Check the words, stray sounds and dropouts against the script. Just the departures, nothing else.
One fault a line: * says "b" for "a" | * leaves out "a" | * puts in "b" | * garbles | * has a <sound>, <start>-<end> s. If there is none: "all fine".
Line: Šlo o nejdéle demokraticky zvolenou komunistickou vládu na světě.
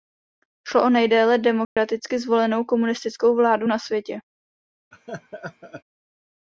* has a dropout, 1.6-1.8 s
* has a laugh, 4.9-5.8 s